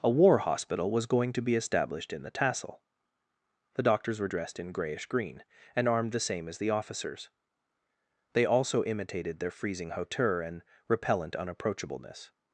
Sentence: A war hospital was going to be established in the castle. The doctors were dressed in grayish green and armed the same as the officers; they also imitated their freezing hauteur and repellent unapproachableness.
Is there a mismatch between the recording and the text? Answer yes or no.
yes